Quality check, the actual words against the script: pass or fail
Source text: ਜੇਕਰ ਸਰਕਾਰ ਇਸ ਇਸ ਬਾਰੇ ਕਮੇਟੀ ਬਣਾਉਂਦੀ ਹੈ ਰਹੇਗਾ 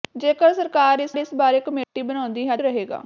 pass